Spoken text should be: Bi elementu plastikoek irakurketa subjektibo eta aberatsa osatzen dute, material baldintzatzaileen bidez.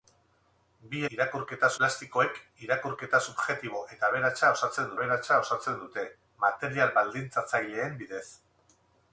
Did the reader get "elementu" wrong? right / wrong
wrong